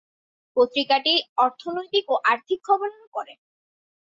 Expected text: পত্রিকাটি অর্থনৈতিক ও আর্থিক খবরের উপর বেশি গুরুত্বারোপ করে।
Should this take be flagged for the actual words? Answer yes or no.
yes